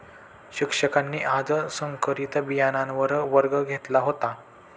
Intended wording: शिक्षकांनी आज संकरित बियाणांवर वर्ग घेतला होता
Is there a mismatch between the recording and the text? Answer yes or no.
no